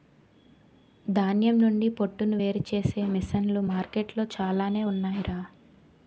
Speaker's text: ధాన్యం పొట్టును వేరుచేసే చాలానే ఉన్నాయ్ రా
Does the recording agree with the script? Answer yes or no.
no